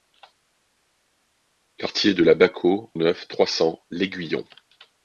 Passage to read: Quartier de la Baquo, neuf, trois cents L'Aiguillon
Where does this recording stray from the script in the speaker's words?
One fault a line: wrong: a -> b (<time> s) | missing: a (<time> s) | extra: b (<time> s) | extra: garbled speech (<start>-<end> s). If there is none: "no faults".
no faults